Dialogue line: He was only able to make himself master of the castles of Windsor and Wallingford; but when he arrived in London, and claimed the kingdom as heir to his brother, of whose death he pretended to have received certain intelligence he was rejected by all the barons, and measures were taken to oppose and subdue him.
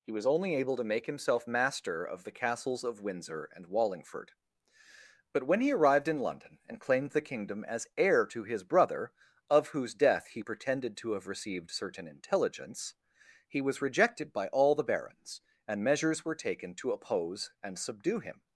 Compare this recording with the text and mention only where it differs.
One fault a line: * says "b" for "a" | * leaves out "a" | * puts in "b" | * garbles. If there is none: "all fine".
all fine